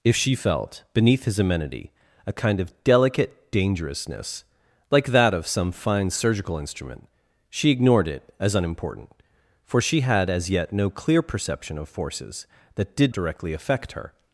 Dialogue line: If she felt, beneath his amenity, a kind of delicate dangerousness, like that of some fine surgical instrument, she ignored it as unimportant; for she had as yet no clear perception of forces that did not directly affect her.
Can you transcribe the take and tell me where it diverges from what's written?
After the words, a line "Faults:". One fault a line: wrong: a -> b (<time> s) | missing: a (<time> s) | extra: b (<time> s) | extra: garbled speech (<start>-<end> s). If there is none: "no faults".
If she felt, beneath his amenity, a kind of delicate dangerousness, like that of some fine surgical instrument, she ignored it as unimportant; for she had as yet no clear perception of forces that did directly affect her.
Faults:
missing: not (13.2 s)